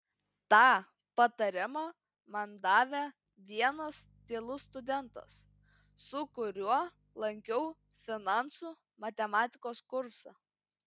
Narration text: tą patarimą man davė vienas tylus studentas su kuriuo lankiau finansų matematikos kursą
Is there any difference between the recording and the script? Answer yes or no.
no